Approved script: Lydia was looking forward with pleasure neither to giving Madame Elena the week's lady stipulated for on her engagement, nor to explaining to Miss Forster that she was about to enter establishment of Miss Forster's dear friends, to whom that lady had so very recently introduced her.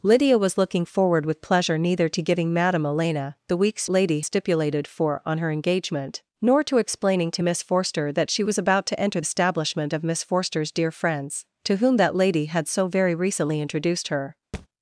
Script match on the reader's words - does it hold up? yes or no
yes